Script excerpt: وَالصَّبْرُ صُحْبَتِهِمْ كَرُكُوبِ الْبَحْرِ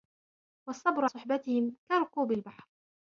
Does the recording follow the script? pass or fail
pass